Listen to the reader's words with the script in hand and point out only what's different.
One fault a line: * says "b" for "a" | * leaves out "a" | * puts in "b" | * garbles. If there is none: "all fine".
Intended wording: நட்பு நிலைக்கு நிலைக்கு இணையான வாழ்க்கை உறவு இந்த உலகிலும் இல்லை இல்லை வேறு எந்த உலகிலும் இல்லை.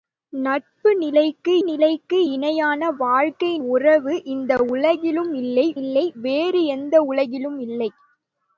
all fine